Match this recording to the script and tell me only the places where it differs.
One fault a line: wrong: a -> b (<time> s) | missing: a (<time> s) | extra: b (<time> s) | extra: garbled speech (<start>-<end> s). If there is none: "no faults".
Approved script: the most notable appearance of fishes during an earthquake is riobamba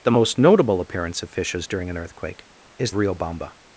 no faults